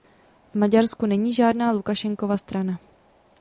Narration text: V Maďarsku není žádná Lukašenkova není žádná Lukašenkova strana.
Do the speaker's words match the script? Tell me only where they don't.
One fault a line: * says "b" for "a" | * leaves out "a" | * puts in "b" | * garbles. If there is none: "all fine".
* leaves out "není žádná Lukašenkova"